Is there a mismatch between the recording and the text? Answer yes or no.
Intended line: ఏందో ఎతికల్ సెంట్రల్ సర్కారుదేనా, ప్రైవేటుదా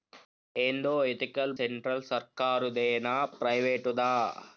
no